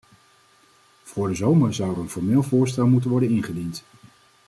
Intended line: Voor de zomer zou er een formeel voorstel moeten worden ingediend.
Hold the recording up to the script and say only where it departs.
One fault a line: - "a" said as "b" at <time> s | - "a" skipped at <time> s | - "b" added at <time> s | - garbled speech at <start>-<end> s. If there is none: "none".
none